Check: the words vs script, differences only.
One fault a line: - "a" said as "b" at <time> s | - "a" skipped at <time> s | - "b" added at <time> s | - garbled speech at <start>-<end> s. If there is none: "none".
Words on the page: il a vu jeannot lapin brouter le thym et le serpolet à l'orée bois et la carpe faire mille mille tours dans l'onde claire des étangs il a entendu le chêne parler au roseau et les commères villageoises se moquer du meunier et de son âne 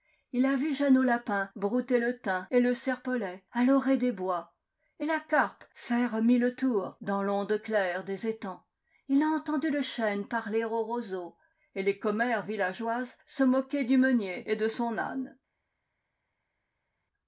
- "des" added at 4.0 s
- "mille" skipped at 6.6 s